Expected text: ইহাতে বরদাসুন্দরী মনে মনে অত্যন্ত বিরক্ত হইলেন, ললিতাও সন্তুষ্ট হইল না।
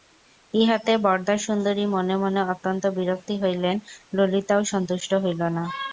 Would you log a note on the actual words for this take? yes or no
no